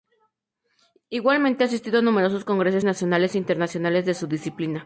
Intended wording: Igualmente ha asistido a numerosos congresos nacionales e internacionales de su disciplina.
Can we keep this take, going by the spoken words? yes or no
yes